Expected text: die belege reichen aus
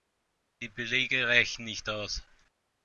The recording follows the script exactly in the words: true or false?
false